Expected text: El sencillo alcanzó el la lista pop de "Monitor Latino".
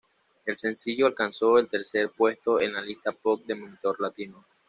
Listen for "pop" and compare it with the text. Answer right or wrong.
right